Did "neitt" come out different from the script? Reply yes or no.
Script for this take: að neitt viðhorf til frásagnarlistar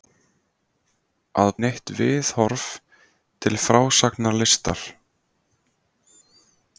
no